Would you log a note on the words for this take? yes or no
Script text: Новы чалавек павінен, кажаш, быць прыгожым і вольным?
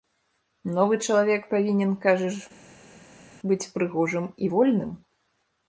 no